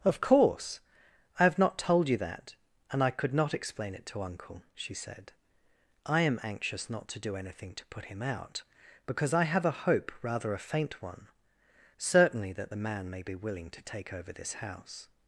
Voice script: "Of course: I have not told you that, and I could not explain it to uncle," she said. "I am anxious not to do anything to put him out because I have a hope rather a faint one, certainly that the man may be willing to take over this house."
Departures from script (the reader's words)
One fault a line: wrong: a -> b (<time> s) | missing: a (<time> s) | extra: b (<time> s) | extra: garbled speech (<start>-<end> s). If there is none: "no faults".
no faults